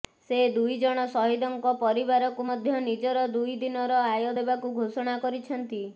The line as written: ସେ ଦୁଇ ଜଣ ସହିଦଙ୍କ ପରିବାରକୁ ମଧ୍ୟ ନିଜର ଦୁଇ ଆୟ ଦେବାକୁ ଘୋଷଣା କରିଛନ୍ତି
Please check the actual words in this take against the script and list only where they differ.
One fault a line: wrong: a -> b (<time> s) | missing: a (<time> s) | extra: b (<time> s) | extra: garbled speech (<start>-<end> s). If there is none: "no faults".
extra: ଦିନର (3.6 s)